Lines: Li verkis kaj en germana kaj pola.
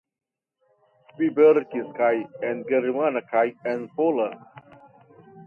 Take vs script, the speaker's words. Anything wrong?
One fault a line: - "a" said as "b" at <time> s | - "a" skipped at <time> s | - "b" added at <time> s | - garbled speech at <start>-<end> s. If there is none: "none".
- "en" added at 3.7 s